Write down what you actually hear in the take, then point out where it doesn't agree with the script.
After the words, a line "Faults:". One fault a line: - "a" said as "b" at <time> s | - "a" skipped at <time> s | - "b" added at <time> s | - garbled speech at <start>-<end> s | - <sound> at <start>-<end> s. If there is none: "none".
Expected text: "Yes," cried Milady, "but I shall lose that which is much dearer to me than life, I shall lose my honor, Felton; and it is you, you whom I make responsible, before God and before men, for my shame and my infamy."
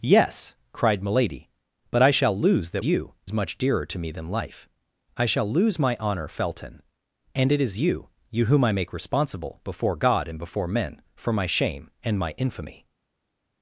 "Yes," cried Milady, "but I shall lose that you is much dearer to me than life, I shall lose my honor, Felton; and it is you, you whom I make responsible, before God and before men, for my shame and my infamy."
Faults:
- "which" said as "you" at 2.8 s